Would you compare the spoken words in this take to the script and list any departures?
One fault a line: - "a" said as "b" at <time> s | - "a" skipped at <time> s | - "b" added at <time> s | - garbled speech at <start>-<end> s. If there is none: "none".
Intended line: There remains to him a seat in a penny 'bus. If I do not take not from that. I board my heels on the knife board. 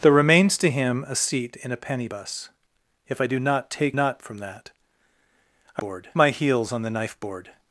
none